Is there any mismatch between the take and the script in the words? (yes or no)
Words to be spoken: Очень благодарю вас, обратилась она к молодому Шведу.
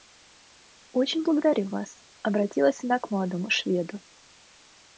no